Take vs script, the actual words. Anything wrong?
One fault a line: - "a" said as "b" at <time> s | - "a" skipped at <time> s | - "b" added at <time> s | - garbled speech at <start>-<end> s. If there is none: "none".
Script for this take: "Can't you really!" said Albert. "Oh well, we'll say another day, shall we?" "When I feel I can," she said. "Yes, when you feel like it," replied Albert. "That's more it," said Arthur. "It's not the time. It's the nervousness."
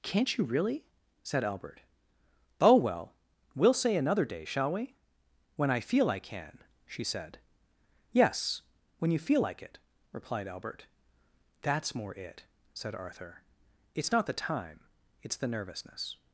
none